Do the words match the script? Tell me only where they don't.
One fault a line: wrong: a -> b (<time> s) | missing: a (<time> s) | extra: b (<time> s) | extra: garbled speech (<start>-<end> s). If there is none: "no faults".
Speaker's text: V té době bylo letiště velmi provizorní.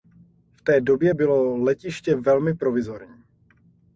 no faults